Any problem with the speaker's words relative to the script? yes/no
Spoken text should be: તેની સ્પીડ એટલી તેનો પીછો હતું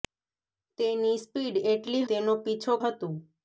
no